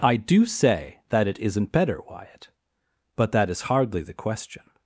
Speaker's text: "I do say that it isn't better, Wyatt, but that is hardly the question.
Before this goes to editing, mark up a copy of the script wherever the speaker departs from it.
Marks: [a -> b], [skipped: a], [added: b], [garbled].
"I do say that it isn't better, Wyatt, but that is hardly the question.